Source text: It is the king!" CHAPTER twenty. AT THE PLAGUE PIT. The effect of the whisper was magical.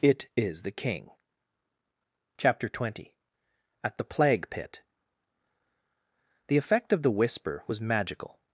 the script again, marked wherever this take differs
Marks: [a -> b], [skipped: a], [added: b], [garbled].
It is the king!" CHAPTER twenty. AT THE PLAGUE PIT. The effect of the whisper was magical.